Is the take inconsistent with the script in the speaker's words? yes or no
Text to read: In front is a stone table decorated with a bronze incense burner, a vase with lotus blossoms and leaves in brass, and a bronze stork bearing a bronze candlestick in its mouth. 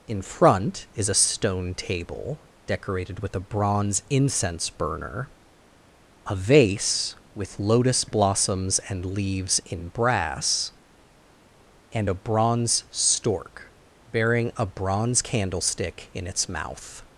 no